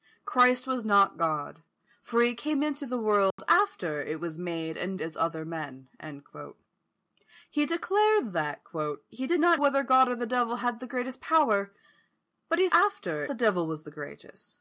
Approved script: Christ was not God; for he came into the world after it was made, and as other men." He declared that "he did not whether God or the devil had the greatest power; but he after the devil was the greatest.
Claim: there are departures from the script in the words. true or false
false